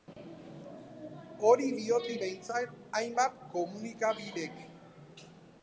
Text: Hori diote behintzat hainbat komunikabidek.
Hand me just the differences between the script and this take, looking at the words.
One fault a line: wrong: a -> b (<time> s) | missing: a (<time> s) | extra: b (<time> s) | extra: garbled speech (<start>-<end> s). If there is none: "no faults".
no faults